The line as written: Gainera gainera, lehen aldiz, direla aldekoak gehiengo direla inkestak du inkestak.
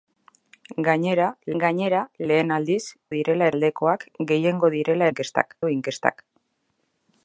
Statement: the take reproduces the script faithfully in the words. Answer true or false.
true